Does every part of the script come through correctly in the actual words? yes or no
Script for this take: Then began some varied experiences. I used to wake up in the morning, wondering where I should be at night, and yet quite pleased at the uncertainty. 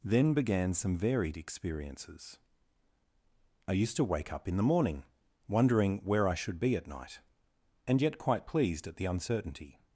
yes